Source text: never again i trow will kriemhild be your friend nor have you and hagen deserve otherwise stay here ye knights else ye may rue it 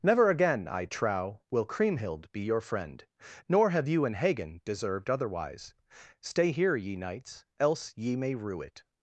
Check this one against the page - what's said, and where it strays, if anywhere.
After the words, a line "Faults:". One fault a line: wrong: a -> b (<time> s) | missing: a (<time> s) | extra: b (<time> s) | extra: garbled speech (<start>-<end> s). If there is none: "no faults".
never again i trow will kriemhild be your friend nor have you and hagen deserved otherwise stay here ye knights else ye may rue it
Faults:
wrong: deserve -> deserved (4.6 s)